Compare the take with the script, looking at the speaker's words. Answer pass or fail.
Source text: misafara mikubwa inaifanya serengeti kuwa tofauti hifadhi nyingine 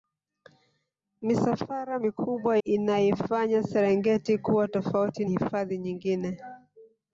pass